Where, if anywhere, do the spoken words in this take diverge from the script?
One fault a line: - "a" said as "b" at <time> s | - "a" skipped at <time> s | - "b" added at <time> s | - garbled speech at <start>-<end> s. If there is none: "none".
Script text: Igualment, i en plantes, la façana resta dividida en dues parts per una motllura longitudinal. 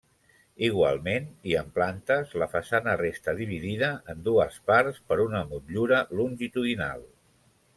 none